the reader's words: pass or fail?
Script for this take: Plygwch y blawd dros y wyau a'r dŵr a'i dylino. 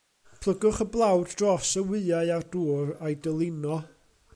pass